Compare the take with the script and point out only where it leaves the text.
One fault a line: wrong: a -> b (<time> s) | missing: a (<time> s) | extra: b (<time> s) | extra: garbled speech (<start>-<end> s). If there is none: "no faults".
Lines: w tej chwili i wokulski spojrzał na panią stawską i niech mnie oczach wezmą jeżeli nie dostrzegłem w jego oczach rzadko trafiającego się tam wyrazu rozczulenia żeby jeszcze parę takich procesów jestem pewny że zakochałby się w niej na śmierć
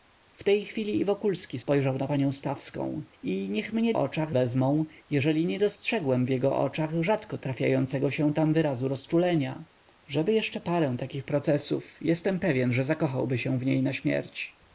no faults